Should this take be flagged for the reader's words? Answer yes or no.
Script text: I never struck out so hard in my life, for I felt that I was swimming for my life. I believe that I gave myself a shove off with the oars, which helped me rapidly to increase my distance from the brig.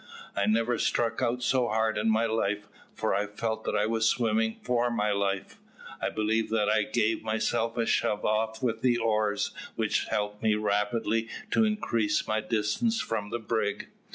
no